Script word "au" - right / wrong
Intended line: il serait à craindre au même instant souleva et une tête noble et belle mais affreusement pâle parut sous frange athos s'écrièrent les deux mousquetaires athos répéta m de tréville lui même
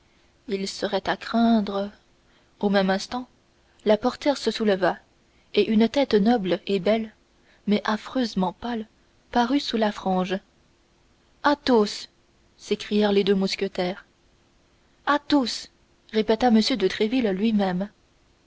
right